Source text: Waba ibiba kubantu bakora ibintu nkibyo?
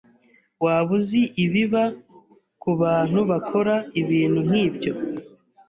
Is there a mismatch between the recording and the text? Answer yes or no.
yes